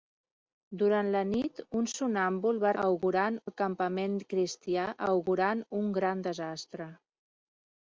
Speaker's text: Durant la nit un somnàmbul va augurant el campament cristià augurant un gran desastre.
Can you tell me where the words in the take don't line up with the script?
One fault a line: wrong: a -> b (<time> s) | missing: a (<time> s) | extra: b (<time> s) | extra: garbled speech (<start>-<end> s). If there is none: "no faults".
no faults